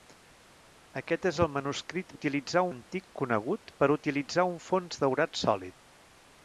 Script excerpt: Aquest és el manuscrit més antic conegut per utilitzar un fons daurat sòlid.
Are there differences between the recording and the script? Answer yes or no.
yes